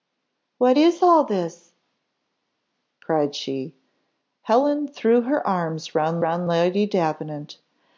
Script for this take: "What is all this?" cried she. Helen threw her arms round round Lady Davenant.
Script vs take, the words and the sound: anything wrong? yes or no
no